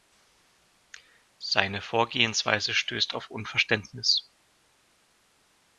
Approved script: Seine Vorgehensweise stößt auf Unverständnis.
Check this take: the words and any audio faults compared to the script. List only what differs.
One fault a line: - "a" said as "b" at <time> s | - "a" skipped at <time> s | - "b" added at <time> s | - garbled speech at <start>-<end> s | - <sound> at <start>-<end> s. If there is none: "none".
none